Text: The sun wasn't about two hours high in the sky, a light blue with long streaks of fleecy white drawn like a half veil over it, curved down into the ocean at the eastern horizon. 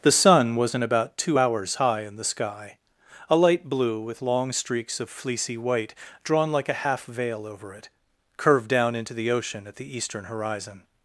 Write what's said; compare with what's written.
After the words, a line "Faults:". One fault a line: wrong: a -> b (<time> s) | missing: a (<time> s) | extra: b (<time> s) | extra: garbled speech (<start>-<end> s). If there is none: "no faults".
The sun wasn't about two hours high in the sky, a light blue with long streaks of fleecy white drawn like a half veil over it, curved down into the ocean at the eastern horizon.
Faults:
no faults